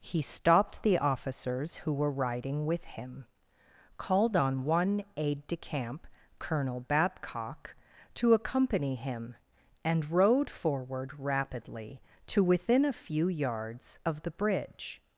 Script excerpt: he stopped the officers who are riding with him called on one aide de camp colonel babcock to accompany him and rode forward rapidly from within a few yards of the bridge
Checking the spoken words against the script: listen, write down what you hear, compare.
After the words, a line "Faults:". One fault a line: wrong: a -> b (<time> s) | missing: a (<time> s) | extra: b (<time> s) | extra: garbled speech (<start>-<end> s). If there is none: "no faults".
he stopped the officers who were riding with him called on one aide de camp colonel babcock to accompany him and rode forward rapidly to within a few yards of the bridge
Faults:
wrong: are -> were (1.9 s)
wrong: from -> to (12.3 s)